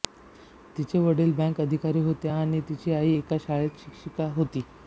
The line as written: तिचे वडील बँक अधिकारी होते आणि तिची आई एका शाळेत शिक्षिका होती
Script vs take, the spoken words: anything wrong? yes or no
no